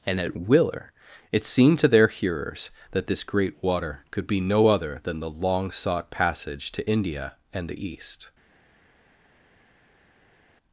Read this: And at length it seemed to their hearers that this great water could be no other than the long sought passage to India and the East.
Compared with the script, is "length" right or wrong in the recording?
wrong